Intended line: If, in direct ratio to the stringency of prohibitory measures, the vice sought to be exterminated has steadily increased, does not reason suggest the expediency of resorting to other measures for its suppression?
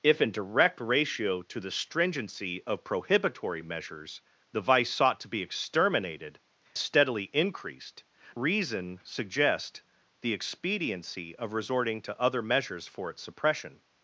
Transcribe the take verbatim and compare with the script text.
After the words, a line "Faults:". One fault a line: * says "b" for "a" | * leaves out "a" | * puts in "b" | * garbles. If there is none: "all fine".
If, in direct ratio to the stringency of prohibitory measures, the vice sought to be exterminated steadily increased, reason suggest the expediency of resorting to other measures for its suppression?
Faults:
* leaves out "has"
* leaves out "does not"